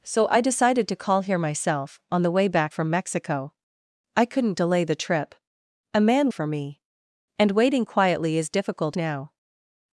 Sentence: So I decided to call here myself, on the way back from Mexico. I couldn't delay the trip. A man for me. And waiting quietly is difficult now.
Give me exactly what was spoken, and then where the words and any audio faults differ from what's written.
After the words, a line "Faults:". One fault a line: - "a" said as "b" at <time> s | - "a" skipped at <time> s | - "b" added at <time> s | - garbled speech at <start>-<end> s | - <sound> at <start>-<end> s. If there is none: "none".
So I decided to call here myself, on the way back from Mexico. I couldn't delay the trip. A man for me. And waiting quietly is difficult now.
Faults:
none